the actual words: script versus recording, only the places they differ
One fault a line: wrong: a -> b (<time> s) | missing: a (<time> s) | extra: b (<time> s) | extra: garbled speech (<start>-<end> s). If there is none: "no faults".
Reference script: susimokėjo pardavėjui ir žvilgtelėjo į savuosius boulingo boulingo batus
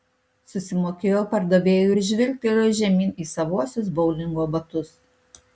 extra: žemyn (2.8 s)
missing: boulingo (4.5 s)